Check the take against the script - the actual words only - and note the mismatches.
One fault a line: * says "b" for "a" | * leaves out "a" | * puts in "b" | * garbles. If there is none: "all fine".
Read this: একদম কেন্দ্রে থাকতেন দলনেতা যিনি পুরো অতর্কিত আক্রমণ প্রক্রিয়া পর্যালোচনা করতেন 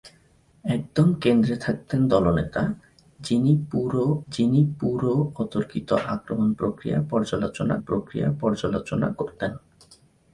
* puts in "যিনি পুরো"
* puts in "প্রক্রিয়া পর্যালোচনা"